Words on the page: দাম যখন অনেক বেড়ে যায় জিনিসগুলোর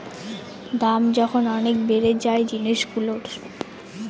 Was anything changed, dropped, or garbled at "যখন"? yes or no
no